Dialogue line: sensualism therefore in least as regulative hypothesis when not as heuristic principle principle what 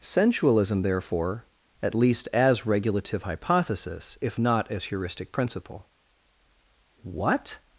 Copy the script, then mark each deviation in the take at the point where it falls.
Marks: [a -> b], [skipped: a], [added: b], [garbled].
sensualism therefore [in -> at] least as regulative hypothesis [when -> if] not as heuristic principle [skipped: principle] what